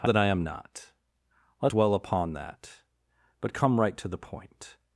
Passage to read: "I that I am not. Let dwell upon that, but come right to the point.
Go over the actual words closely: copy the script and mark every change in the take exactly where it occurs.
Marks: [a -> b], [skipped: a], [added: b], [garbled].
"I that I am not. Let dwell upon that, but come right to the point.